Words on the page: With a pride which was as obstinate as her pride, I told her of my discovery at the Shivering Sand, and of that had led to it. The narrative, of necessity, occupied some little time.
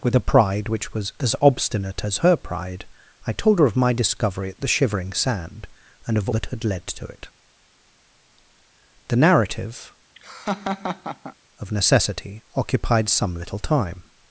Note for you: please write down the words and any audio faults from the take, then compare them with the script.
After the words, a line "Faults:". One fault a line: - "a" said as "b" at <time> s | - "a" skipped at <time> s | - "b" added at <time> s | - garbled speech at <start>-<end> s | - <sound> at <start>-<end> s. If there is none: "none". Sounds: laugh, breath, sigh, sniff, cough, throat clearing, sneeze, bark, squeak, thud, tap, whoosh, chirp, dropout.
With a pride which was as obstinate as her pride, I told her of my discovery at the Shivering Sand, and of that had led to it. The narrative, of necessity, occupied some little time.
Faults:
- laugh at 10.2-11.4 s